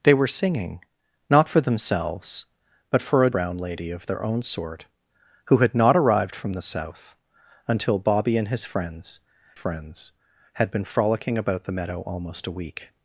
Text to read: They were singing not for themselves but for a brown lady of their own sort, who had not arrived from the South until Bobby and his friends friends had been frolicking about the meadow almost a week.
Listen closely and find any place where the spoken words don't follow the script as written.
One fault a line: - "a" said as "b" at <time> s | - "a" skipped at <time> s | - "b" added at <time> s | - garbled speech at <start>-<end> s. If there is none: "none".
none